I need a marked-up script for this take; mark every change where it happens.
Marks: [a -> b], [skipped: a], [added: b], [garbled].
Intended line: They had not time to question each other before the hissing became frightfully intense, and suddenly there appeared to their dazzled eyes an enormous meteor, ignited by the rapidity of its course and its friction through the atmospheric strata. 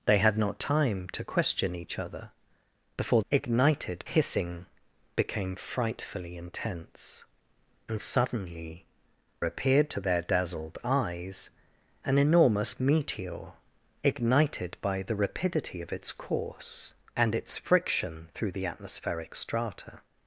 They had not time to question each other before [the -> ignited] hissing became frightfully intense, and suddenly [skipped: there] appeared to their dazzled eyes an enormous meteor, ignited by the rapidity of its course and its friction through the atmospheric strata.